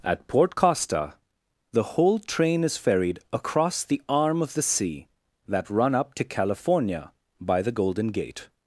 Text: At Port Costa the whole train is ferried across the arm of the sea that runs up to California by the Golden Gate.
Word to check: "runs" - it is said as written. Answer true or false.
false